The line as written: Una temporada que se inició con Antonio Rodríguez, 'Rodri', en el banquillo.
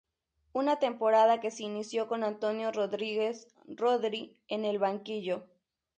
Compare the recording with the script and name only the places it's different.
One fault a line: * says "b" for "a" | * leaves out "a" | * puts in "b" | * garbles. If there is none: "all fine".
all fine